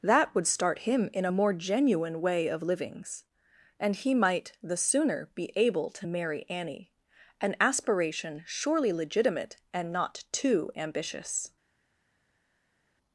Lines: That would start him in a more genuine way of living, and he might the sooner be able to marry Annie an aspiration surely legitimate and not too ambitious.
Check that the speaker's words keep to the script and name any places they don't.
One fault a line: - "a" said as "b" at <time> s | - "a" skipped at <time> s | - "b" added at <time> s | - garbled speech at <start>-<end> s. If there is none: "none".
- "living" said as "livings" at 2.6 s